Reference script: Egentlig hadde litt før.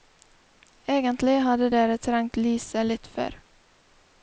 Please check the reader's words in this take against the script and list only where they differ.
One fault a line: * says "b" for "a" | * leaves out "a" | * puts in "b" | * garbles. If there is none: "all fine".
* puts in "dere trengt lyset"